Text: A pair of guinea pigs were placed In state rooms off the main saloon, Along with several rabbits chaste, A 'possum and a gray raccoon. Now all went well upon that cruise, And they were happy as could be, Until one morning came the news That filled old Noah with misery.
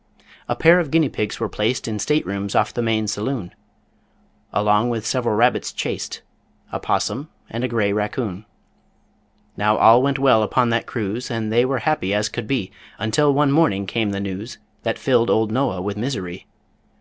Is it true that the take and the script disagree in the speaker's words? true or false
false